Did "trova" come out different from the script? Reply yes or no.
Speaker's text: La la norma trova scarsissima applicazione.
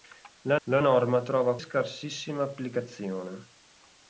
no